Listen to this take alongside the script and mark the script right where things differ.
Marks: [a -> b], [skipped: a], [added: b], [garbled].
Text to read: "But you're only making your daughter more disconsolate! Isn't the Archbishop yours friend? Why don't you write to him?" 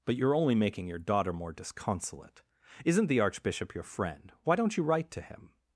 "But you're only making your daughter more disconsolate! Isn't the Archbishop [yours -> your] friend? Why don't you write to him?"